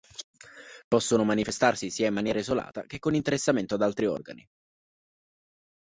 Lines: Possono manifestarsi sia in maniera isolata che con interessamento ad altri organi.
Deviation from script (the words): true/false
false